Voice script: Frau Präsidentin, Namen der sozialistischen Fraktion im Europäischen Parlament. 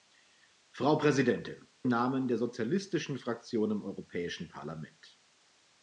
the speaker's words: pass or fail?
pass